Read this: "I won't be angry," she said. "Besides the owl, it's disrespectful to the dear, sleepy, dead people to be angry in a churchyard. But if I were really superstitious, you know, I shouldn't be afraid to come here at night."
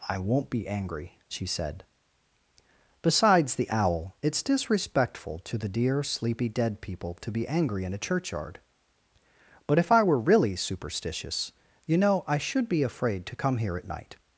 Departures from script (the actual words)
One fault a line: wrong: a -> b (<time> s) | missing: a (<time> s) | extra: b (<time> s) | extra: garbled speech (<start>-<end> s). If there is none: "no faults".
wrong: shouldn't -> should (12.4 s)